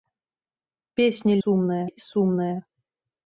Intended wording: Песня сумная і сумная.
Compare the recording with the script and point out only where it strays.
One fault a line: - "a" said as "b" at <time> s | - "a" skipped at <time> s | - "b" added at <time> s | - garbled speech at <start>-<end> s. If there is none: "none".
none